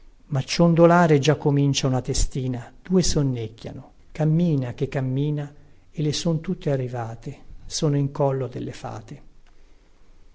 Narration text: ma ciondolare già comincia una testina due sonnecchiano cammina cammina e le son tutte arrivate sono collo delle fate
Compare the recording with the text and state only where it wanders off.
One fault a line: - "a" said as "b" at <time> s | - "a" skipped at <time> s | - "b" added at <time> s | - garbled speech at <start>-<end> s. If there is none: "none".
- "che" added at 4.7 s
- "in" added at 8.0 s